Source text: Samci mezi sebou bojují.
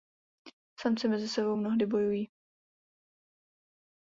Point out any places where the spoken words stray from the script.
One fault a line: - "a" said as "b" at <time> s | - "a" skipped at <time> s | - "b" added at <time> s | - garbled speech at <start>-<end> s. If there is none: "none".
- "mnohdy" added at 1.5 s